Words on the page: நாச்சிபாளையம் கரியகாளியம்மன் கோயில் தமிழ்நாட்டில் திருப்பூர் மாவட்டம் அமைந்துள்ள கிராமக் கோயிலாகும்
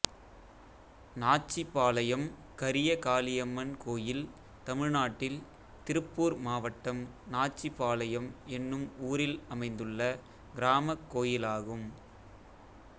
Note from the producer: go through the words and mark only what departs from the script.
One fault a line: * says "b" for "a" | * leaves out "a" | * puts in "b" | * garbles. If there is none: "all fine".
* puts in "நாச்சிபாளையம் என்னும் ஊரில்"